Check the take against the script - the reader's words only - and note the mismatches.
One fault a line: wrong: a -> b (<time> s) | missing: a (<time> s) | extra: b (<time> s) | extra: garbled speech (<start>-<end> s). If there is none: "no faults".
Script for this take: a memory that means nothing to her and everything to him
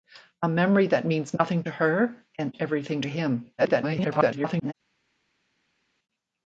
extra: garbled speech (3.6-4.7 s)